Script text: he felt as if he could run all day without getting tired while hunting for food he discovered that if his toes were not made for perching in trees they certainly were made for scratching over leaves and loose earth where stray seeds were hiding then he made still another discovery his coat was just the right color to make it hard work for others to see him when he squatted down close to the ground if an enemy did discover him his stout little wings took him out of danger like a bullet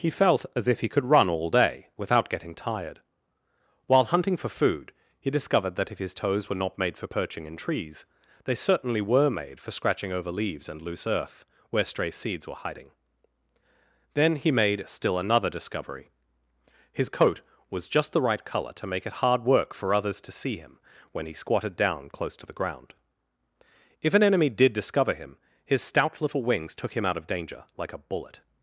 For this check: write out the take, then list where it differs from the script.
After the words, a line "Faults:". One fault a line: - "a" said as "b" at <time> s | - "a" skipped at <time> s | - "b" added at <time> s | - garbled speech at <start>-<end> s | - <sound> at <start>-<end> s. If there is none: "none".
he felt as if he could run all day without getting tired while hunting for food he discovered that if his toes were not made for perching in trees they certainly were made for scratching over leaves and loose earth where stray seeds were hiding then he made still another discovery his coat was just the right color to make it hard work for others to see him when he squatted down close to the ground if an enemy did discover him his stout little wings took him out of danger like a bullet
Faults:
none